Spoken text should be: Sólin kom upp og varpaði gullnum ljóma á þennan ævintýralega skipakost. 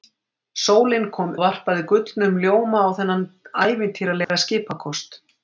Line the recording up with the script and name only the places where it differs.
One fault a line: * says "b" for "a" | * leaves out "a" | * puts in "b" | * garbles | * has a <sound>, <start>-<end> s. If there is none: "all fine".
* leaves out "upp"
* has a dropout, 4.2-4.3 s